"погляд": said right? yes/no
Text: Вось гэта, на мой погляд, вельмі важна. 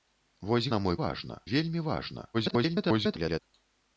no